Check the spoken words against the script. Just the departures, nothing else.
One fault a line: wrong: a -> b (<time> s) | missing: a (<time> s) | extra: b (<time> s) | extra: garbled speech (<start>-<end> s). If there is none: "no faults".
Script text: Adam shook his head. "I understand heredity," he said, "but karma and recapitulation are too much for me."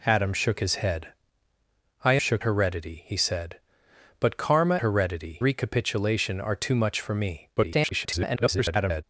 wrong: understand -> shook (2.2 s)
wrong: and -> heredity (4.8 s)
extra: garbled speech (7.6-9.0 s)